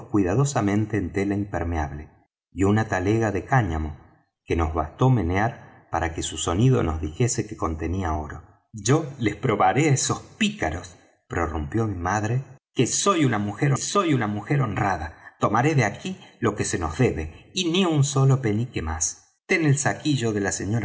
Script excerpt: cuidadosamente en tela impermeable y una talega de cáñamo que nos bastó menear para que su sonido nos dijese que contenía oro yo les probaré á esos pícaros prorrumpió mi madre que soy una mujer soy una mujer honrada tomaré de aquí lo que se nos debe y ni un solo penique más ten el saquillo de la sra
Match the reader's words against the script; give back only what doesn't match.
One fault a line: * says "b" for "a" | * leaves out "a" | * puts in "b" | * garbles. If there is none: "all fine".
all fine